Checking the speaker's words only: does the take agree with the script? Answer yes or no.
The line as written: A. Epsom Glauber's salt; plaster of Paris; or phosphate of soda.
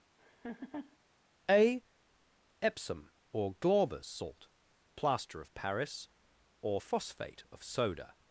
no